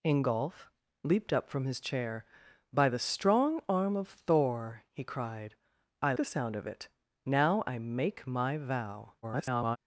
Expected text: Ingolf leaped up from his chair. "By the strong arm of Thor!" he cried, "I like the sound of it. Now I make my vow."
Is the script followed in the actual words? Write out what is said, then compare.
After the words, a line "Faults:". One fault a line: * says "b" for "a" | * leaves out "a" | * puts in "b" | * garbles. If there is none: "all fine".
Ingolf leaped up from his chair. "By the strong arm of Thor!" he cried, "I the sound of it. Now I make my vow." [garbled]
Faults:
* leaves out "like"
* garbles